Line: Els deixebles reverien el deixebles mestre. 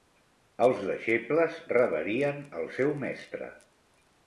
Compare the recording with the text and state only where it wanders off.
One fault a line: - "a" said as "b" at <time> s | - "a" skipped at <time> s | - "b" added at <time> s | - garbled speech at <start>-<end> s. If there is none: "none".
- "deixebles" said as "seu" at 2.8 s